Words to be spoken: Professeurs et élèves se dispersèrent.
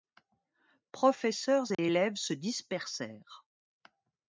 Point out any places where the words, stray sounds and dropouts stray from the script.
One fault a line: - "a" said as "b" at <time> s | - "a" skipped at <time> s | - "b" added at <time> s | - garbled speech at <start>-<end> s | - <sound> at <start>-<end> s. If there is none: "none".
- dropout at 1.7-1.8 s